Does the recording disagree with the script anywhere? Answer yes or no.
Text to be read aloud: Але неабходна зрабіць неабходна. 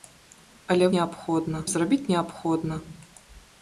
no